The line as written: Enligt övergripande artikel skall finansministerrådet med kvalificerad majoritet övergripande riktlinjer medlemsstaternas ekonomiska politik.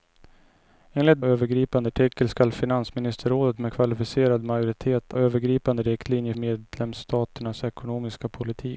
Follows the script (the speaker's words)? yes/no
yes